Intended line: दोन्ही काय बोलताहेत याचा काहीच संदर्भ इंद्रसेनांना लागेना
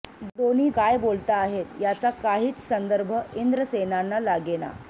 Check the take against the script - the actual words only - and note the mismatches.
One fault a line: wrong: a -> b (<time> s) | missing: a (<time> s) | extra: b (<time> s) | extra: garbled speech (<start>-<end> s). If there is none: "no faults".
no faults